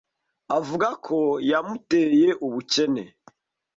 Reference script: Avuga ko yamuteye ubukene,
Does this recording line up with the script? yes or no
yes